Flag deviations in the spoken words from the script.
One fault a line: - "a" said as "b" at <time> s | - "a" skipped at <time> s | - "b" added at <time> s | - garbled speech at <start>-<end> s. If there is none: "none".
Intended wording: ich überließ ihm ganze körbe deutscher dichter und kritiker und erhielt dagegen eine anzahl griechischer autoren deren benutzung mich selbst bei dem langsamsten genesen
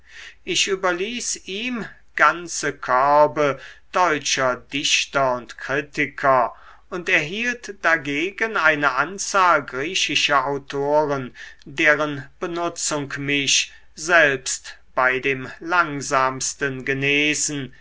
none